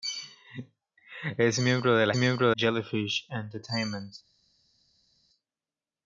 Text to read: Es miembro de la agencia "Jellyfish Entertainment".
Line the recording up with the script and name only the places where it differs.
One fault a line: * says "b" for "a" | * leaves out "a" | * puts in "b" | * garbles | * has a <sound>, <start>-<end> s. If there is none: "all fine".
* says "miembro" for "agencia"